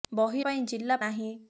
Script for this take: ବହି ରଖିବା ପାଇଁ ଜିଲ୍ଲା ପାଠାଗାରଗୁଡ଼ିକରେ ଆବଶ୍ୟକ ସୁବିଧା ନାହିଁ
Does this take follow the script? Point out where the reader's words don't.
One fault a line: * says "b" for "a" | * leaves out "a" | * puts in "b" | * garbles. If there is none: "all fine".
* leaves out "ରଖିବା"
* leaves out "ପାଠାଗାରଗୁଡ଼ିକରେ ଆବଶ୍ୟକ ସୁବିଧା"